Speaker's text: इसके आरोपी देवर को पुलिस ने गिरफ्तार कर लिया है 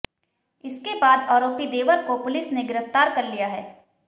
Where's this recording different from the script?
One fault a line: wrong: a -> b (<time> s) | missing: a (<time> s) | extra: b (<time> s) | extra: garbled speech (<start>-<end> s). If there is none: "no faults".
extra: बाद (0.9 s)